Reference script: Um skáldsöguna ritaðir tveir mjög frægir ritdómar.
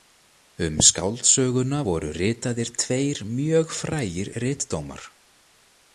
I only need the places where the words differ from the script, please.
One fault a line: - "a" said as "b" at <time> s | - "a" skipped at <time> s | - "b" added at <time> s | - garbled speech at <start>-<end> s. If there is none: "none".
- "voru" added at 1.9 s